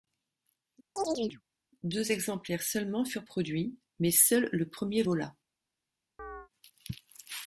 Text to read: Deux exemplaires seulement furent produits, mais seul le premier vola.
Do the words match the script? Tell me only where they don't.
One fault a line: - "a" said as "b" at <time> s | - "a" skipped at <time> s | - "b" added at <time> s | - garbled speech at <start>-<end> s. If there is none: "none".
none